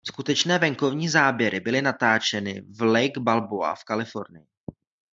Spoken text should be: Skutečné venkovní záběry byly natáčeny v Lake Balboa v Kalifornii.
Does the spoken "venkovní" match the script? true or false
true